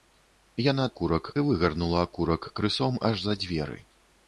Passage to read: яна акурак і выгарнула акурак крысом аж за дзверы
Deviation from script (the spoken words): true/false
false